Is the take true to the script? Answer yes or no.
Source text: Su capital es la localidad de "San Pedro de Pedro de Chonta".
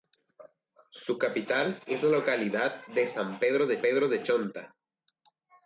yes